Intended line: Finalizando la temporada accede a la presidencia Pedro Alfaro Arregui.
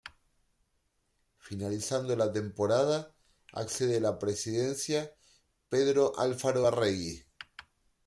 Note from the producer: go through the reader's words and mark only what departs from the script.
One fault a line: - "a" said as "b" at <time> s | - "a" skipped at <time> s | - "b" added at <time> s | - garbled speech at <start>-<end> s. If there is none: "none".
none